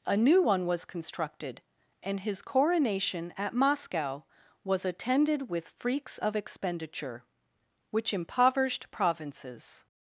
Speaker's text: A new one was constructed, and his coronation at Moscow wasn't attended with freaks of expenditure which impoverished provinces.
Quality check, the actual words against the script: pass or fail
fail